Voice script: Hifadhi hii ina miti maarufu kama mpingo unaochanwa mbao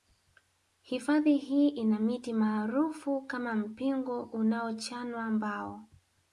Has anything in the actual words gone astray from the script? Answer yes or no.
no